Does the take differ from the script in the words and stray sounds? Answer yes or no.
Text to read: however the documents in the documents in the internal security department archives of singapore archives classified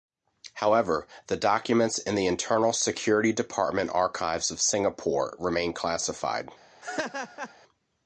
yes